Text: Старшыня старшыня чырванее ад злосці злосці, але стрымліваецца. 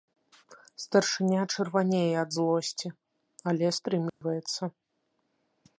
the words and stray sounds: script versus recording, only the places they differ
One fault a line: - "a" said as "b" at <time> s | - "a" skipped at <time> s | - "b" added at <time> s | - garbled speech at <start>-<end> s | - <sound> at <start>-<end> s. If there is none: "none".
- "старшыня" skipped at 1.4 s
- "злосці" skipped at 2.9 s
- dropout at 4.1-4.2 s